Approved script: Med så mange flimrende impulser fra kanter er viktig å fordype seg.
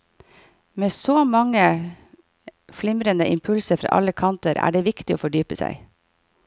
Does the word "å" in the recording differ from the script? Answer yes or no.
no